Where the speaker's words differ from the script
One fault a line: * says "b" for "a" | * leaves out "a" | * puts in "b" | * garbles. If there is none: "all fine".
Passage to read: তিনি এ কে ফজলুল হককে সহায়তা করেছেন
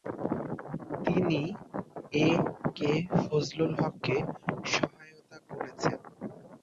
all fine